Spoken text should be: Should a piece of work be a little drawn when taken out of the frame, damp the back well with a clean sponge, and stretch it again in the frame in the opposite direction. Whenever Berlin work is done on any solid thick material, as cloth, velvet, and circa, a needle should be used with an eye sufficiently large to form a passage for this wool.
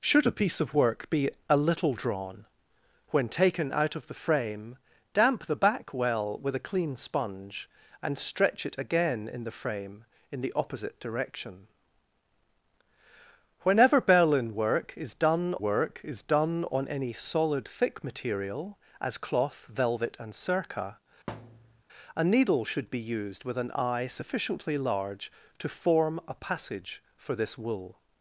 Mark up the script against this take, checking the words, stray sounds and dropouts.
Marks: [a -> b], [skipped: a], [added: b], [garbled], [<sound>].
Should a piece of work be a little drawn when taken out of the frame, damp the back well with a clean sponge, and stretch it again in the frame in the opposite direction. Whenever Berlin work is done [added: work is done] on any solid thick material, as cloth, velvet, and circa, [thud] a needle should be used with an eye sufficiently large to form a passage for this wool.